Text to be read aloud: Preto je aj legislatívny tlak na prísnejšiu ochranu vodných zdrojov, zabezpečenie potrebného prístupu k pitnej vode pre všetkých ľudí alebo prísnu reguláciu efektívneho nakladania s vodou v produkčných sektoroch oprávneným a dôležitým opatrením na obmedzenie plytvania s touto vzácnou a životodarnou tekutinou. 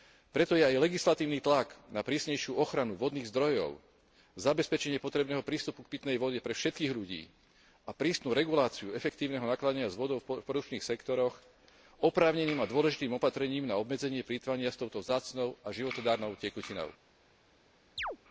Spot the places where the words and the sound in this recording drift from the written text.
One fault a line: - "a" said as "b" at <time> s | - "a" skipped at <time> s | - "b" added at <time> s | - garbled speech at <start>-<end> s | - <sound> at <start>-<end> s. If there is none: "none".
- "alebo" said as "a" at 7.8 s
- chirp at 18.0-18.2 s